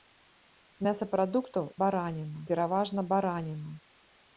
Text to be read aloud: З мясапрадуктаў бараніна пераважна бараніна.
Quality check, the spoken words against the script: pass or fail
pass